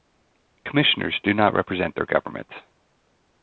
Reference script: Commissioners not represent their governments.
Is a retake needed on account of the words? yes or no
yes